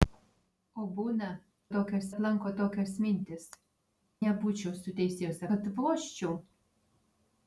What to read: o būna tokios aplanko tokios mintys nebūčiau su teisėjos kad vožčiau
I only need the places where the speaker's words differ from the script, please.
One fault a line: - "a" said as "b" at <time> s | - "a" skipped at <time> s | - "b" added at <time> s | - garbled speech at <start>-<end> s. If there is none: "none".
none